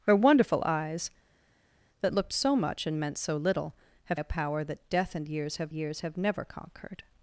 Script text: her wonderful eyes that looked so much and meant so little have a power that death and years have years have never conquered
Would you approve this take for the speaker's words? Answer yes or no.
yes